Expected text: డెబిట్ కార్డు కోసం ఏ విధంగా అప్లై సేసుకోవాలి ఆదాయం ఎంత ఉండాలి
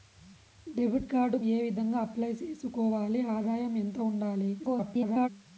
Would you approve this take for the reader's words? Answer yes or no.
no